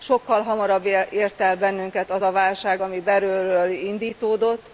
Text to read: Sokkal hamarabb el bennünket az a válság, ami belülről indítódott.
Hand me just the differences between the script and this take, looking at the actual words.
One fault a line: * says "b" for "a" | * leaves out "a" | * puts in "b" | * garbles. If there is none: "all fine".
* puts in "ért"